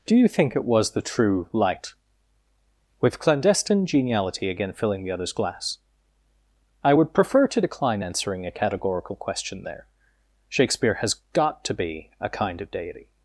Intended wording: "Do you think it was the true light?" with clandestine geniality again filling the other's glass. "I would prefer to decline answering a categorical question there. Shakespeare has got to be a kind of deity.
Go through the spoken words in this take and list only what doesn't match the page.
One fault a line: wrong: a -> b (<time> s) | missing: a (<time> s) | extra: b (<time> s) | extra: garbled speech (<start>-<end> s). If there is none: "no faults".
no faults